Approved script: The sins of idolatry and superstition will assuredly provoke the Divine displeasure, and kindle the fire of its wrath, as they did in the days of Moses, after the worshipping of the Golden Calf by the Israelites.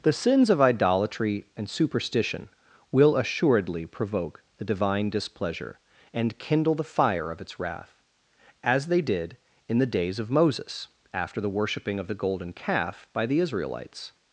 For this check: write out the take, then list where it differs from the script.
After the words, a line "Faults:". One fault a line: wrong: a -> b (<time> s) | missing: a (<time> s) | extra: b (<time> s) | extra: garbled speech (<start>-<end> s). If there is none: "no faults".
The sins of idolatry and superstition will assuredly provoke the Divine displeasure, and kindle the fire of its wrath, as they did in the days of Moses, after the worshipping of the Golden Calf by the Israelites.
Faults:
no faults